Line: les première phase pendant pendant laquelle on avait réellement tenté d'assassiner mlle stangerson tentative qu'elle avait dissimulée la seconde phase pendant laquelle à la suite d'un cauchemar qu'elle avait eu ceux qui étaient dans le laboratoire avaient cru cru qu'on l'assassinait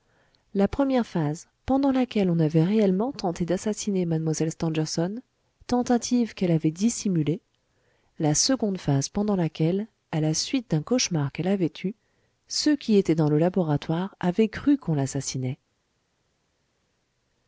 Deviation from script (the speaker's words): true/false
true